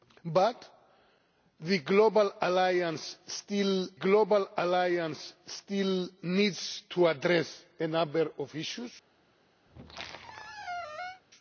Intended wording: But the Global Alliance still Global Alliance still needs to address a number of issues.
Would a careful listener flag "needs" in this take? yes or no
no